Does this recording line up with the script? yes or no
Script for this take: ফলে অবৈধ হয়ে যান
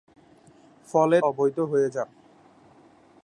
yes